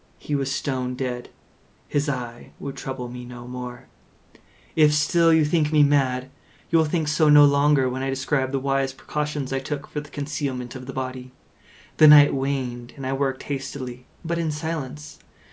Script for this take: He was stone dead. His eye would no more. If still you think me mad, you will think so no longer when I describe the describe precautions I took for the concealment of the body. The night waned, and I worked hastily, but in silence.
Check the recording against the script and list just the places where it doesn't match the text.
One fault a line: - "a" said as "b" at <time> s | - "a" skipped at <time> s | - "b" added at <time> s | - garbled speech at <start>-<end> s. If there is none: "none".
- "trouble me" added at 2.8 s
- "describe" said as "wise" at 8.6 s